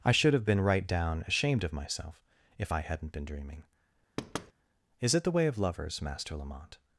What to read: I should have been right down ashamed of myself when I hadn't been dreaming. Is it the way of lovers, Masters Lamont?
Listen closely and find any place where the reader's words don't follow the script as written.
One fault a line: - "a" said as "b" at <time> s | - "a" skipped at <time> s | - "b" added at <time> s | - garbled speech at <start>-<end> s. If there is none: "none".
- "when" said as "if" at 2.6 s
- "Masters" said as "Master" at 6.0 s